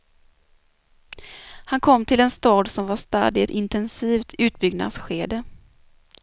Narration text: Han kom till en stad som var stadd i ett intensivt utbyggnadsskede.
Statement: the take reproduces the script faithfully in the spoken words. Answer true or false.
true